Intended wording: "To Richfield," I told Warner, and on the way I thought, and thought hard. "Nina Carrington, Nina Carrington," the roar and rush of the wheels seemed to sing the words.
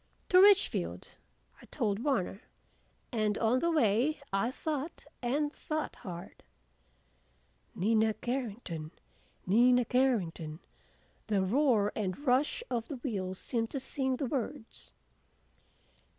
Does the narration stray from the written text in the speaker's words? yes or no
no